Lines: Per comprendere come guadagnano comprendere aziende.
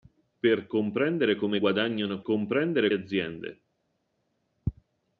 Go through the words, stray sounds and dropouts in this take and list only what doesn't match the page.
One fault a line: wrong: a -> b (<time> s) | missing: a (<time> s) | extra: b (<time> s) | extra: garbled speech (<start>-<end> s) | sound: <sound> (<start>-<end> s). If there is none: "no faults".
no faults